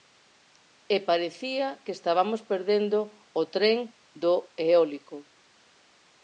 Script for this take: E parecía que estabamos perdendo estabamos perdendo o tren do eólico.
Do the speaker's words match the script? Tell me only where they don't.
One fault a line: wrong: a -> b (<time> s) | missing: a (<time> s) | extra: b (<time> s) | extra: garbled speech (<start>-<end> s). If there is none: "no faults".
missing: estabamos perdendo (3.0 s)